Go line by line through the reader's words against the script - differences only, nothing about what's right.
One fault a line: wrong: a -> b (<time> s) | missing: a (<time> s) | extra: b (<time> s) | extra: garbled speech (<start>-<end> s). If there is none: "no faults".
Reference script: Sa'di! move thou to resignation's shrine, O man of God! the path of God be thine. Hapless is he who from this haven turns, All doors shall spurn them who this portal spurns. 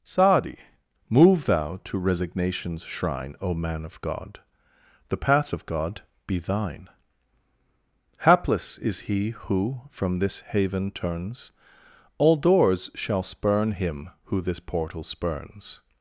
wrong: them -> him (13.7 s)